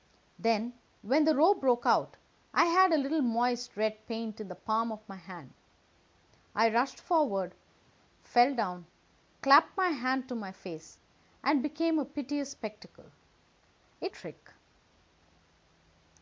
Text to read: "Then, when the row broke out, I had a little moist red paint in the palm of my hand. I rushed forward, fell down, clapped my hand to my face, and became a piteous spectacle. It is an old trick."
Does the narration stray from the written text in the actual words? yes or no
yes